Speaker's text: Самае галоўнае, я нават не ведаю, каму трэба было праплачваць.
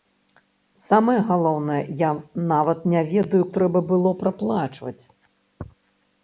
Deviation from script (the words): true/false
true